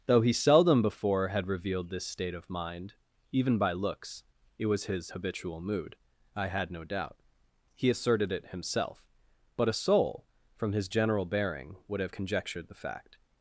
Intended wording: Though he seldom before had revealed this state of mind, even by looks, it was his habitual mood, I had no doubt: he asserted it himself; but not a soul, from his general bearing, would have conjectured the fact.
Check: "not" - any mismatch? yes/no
yes